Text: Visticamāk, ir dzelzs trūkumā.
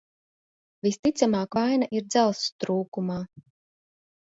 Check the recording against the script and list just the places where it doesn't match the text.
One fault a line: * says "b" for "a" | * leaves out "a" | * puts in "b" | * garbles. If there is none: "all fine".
* puts in "vaina"